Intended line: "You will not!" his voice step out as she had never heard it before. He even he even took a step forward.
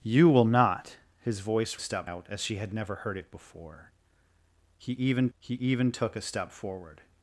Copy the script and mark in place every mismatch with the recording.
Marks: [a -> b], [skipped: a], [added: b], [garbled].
"You will not!" his voice step out as she had never heard it before. He even he even took a step forward.